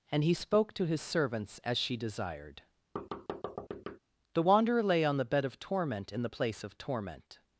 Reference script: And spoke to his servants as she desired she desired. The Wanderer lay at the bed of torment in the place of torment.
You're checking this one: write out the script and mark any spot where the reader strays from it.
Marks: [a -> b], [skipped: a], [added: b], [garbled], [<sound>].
And [added: he] spoke to his servants as she desired [skipped: she desired.] [thud] The Wanderer lay [at -> on] the bed of torment in the place of torment.